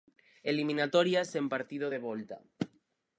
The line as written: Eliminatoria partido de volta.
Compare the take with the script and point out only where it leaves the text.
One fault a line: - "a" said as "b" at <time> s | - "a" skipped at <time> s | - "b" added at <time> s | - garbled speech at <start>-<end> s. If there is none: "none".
- "sen" added at 1.3 s